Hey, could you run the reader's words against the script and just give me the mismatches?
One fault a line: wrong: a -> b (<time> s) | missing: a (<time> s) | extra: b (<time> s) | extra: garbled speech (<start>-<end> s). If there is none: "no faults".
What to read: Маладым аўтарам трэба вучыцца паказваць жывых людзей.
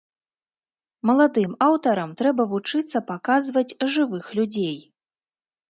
no faults